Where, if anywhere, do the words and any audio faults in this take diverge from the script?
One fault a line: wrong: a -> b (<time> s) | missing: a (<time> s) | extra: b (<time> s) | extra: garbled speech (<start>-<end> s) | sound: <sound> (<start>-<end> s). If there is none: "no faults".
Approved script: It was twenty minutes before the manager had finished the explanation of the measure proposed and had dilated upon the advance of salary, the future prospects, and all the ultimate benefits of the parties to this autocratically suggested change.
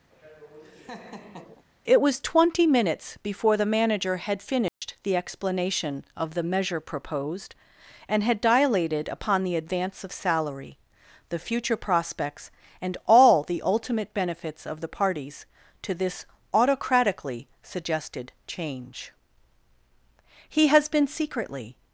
sound: laugh (0.1-1.6 s)
sound: dropout (4.7-4.8 s)
extra: He has been secretly (20.5 s)